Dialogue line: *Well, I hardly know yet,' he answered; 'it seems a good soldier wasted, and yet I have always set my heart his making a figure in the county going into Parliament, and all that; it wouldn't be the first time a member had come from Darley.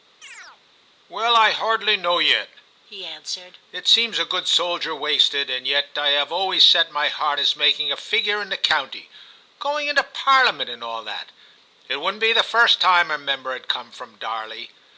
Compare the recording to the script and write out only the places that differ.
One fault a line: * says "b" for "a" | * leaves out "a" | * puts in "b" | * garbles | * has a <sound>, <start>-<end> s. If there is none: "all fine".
* has a chirp, 0.2-0.6 s